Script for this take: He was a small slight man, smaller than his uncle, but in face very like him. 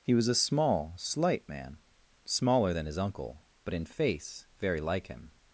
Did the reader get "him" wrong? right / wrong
right